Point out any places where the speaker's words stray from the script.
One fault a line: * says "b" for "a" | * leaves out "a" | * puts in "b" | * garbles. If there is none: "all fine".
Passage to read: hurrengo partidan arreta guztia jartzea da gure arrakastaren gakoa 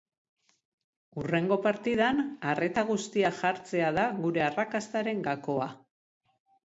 all fine